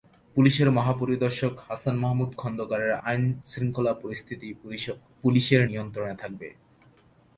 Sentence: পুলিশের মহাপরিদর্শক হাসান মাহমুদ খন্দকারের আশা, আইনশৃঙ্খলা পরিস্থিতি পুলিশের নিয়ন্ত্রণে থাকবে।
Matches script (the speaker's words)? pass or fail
fail